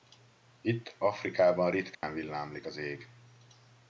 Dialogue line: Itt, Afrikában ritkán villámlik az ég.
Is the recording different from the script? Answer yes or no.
no